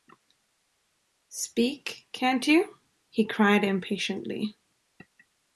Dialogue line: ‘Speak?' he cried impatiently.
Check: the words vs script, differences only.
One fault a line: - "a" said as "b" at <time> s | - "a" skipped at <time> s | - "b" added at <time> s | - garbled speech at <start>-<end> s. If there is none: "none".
- "can't you" added at 2.1 s